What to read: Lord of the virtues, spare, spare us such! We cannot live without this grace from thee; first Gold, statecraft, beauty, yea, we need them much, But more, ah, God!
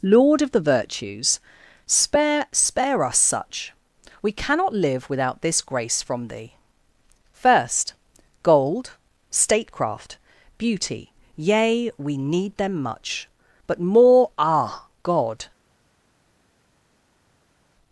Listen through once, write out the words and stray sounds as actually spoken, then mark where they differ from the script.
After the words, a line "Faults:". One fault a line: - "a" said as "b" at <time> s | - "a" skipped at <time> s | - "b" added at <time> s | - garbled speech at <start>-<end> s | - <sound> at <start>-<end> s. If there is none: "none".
Lord of the virtues, spare, spare us such! We cannot live without this grace from thee; first Gold, statecraft, beauty, yea, we need them much, But more, ah, God!
Faults:
none